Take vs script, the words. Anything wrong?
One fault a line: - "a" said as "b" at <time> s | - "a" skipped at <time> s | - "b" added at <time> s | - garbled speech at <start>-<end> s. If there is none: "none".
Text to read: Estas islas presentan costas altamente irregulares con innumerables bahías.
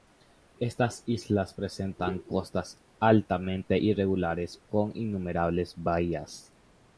none